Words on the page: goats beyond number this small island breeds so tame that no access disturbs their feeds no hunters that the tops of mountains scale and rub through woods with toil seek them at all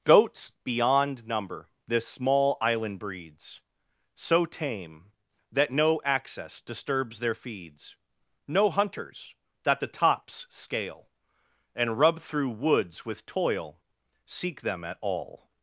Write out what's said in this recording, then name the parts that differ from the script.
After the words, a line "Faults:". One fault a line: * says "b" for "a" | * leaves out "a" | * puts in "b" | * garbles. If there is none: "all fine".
goats beyond number this small island breeds so tame that no access disturbs their feeds no hunters that the tops scale and rub through woods with toil seek them at all
Faults:
* leaves out "of mountains"